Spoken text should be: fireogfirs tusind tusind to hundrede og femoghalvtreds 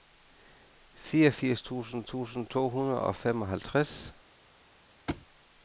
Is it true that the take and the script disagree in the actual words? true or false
false